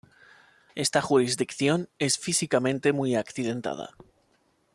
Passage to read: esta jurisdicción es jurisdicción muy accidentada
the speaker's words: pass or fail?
fail